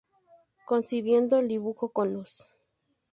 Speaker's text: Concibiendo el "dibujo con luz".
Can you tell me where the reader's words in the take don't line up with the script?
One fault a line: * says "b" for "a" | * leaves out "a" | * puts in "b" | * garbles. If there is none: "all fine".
all fine